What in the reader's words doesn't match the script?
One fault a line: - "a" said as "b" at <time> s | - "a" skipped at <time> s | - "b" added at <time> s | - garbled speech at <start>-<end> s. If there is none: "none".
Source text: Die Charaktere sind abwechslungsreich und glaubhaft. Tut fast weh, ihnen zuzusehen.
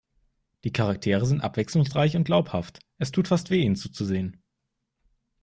- "Es" added at 3.0 s